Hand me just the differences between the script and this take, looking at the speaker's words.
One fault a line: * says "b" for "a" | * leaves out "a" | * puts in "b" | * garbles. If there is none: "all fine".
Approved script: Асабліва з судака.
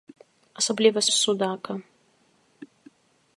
all fine